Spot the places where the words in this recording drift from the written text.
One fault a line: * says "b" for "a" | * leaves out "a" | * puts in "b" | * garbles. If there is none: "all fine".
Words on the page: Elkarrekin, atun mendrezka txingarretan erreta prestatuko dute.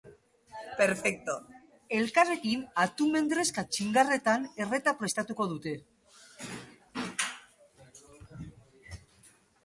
all fine